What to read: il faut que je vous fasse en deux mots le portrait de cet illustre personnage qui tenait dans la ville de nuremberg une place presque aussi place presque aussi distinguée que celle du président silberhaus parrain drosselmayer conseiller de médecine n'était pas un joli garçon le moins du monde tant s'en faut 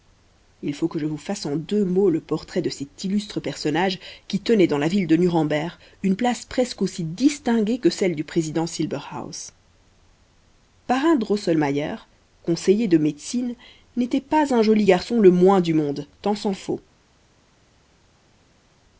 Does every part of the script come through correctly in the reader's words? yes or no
no